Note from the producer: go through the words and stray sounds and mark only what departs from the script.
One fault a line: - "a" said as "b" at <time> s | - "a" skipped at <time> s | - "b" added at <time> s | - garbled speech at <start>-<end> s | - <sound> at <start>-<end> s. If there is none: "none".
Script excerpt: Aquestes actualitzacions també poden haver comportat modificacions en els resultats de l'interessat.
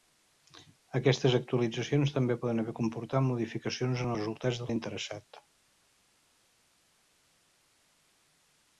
- "els" skipped at 4.2 s